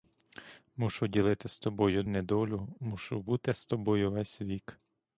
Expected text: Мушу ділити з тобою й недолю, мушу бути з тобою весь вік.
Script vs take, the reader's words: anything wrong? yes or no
no